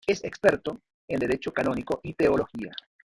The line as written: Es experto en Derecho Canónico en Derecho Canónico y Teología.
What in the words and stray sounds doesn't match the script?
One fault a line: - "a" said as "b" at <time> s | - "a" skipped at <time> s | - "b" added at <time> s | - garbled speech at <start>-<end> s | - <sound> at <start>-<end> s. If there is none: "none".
- "en Derecho Canónico" skipped at 2.0 s